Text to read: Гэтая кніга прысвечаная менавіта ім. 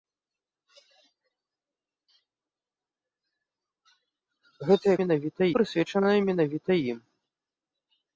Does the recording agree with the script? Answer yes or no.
no